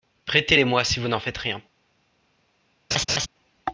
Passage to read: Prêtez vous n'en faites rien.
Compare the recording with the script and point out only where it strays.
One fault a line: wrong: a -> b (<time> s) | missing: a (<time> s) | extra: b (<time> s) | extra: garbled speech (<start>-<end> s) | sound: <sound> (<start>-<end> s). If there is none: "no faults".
extra: les moi si (0.5 s)
sound: laugh (2.9-3.3 s)